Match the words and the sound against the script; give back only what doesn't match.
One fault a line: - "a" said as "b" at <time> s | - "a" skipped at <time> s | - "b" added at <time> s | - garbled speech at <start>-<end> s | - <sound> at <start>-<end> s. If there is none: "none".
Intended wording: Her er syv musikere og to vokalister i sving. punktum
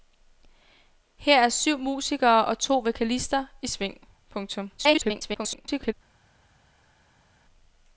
- garbled speech at 4.8-5.9 s